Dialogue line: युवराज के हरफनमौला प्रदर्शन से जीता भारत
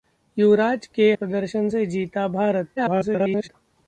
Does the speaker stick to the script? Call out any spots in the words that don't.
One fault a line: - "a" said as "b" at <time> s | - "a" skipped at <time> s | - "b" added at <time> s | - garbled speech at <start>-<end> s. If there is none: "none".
- "हरफनमौला" skipped at 1.1 s
- garbled speech at 2.8-3.5 s